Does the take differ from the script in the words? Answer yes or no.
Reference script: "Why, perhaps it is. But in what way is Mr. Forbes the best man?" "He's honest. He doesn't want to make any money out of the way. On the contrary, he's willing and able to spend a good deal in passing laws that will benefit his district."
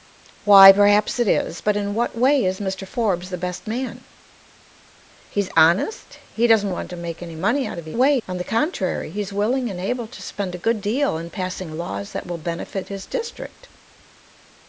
no